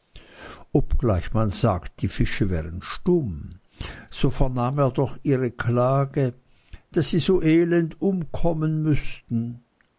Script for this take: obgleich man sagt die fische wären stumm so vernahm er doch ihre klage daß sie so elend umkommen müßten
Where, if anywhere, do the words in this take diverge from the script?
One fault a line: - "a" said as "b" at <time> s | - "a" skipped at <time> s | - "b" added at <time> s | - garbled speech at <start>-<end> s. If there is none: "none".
none